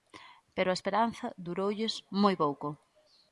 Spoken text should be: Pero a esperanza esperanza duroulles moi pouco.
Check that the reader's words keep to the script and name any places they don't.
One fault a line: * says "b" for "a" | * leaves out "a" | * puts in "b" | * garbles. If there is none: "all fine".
* leaves out "esperanza"